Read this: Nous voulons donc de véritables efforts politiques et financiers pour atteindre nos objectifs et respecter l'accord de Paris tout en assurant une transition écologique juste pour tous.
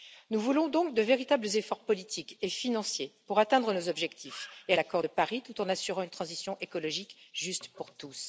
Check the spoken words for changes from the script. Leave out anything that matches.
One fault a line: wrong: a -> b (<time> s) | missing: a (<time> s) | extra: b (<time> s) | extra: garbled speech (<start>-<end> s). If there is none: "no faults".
missing: respecter (4.7 s)